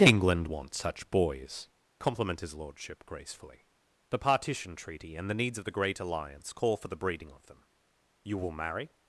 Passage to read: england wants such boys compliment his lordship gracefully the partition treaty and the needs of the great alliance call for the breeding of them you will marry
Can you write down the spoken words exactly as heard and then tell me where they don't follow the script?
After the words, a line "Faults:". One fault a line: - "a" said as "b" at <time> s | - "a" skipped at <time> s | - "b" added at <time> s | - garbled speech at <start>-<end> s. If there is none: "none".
england wants such boys compliment his lordship gracefully the partition treaty and the needs of the great alliance call for the breeding of them you will marry
Faults:
none